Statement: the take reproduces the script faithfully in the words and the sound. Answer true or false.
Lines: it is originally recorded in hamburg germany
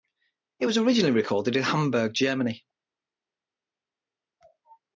false